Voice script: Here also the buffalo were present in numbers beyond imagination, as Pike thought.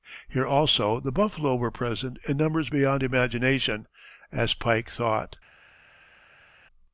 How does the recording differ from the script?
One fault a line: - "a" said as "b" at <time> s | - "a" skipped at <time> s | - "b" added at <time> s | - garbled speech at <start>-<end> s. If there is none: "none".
none